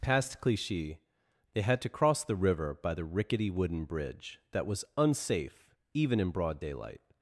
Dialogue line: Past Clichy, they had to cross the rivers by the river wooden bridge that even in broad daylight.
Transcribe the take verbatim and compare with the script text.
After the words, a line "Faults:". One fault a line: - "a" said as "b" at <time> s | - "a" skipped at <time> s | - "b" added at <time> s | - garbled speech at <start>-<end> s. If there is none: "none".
Past Clichy, they had to cross the river by the rickety wooden bridge that was unsafe even in broad daylight.
Faults:
- "rivers" said as "river" at 2.4 s
- "river" said as "rickety" at 3.0 s
- "was unsafe" added at 4.7 s